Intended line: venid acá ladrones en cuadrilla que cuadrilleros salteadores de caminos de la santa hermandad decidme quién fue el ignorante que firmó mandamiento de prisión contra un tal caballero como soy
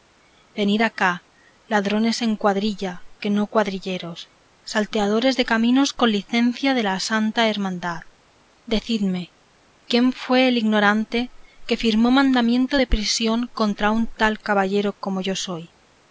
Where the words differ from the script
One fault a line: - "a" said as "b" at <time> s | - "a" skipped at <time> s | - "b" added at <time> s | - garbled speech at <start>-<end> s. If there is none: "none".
- "no" added at 3.3 s
- "con licencia" added at 5.9 s
- "yo" added at 15.2 s